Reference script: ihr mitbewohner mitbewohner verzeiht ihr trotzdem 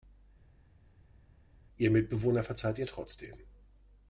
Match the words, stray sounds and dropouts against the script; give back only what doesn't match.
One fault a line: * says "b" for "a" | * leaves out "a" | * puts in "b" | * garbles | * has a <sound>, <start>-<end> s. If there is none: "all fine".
* leaves out "mitbewohner"